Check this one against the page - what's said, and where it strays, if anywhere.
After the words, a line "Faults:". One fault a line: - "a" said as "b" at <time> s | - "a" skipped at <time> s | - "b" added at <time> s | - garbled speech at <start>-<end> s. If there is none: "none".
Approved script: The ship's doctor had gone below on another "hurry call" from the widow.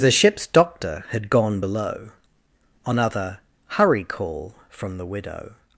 The ship's doctor had gone below on other "hurry call" from the widow.
Faults:
- "another" said as "other" at 3.0 s